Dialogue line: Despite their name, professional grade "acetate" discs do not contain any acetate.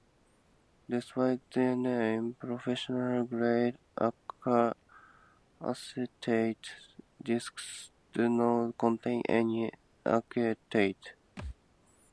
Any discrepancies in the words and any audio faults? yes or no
yes